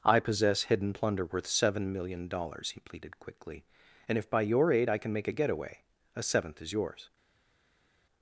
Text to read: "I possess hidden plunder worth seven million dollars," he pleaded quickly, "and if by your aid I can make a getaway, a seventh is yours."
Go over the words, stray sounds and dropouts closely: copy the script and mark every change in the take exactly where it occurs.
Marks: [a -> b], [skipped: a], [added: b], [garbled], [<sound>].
"I possess hidden plunder worth seven million dollars," he pleaded quickly, "and if by your aid I can make a getaway, a seventh is yours."